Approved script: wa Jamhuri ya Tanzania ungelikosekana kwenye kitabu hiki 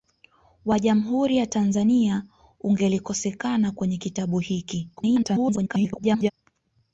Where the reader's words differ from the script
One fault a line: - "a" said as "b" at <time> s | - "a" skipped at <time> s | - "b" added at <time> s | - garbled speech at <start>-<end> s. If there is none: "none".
- garbled speech at 5.0-6.3 s